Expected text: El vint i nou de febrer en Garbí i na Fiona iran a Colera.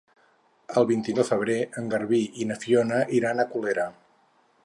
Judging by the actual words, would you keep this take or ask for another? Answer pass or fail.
fail